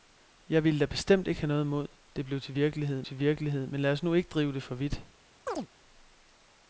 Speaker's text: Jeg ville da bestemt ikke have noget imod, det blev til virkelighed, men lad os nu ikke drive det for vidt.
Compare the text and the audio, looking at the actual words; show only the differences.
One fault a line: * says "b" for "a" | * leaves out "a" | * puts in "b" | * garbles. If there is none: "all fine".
* puts in "til virkelighed"